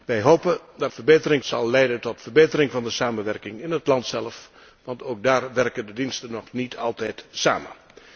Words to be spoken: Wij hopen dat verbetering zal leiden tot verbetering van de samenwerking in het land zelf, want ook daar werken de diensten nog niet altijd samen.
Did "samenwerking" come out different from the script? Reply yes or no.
no